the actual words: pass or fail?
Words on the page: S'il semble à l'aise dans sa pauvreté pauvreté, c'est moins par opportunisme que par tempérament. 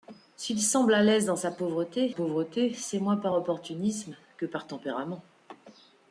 pass